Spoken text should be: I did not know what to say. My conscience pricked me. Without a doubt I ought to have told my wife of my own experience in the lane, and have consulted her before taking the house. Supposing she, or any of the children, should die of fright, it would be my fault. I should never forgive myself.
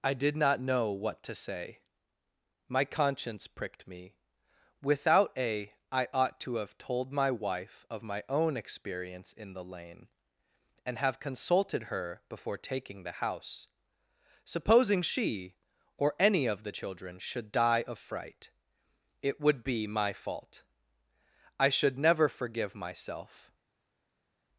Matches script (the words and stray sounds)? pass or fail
fail